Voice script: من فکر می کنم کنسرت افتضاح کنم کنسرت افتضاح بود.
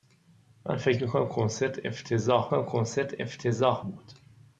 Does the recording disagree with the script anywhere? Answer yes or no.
no